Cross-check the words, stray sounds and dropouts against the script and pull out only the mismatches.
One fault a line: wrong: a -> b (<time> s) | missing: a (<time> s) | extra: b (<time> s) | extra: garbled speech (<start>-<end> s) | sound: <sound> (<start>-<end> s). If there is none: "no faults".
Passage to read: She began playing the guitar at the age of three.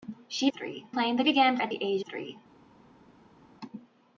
wrong: began -> three (0.5 s)
wrong: guitar -> began (1.2 s)
missing: of (2.0 s)